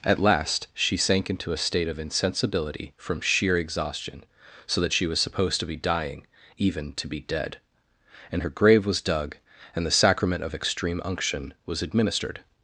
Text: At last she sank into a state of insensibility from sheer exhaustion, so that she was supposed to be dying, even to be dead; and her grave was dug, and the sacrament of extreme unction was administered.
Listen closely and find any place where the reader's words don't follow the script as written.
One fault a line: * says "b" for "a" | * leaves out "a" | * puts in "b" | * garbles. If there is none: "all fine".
all fine